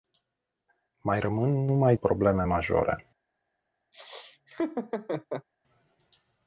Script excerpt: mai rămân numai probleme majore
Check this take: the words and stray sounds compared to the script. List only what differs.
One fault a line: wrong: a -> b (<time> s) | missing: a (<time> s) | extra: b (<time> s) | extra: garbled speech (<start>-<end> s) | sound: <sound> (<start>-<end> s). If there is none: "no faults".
sound: laugh (3.9-5.5 s)